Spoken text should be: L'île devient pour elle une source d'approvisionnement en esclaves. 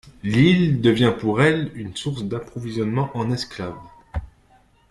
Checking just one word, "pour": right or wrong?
right